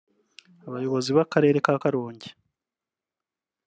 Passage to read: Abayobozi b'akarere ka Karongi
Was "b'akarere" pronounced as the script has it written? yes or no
yes